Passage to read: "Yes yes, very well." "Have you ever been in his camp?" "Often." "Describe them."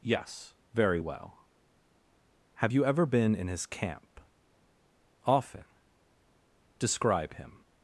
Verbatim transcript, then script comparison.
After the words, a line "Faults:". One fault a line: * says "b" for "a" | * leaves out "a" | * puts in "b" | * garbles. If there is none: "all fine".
"Yes, very well." "Have you ever been in his camp?" "Often." "Describe him."
Faults:
* leaves out "yes"
* says "him" for "them"